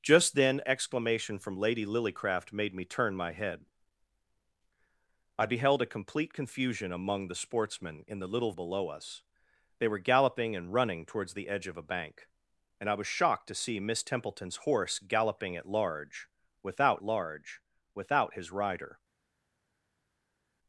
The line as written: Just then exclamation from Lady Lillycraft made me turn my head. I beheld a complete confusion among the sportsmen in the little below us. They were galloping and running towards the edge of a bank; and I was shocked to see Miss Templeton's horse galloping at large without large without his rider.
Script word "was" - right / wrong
right